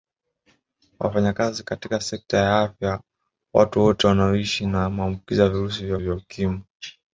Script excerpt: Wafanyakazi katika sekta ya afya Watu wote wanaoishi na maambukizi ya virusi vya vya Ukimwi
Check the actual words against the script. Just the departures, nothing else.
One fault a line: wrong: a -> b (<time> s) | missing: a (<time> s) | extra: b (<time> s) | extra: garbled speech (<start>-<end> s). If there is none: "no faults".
no faults